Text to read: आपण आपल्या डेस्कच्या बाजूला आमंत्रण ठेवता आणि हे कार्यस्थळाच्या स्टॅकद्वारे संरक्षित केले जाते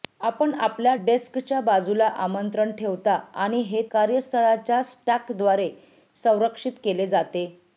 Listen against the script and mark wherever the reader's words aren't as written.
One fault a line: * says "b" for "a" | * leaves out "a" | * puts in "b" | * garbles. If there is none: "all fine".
all fine